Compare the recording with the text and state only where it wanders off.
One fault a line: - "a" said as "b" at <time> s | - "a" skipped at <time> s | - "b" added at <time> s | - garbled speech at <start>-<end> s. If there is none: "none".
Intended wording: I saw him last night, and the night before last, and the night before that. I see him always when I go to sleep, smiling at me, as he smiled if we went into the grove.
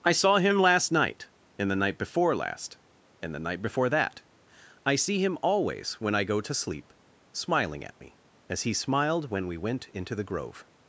- "if" said as "when" at 9.3 s